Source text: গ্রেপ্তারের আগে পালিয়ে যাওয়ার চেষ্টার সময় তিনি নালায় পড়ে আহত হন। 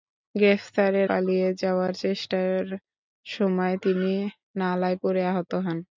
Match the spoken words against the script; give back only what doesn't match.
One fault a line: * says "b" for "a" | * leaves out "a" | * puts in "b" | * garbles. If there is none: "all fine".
* leaves out "আগে"